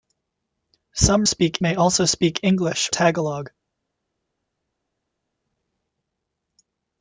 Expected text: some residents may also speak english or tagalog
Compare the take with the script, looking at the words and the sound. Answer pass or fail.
fail